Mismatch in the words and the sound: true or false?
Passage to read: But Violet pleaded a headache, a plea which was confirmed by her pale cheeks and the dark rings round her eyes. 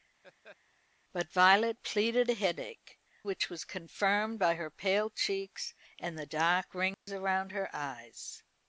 true